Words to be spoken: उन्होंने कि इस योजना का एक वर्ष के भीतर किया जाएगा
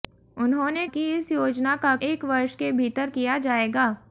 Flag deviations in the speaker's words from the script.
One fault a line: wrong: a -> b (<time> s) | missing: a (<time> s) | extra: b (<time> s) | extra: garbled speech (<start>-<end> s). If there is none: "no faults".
no faults